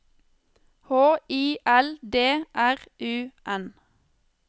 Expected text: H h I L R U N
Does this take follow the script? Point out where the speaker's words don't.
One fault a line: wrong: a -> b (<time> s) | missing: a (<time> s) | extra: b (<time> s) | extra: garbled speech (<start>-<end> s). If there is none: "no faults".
missing: h (1.2 s)
extra: D (2.0 s)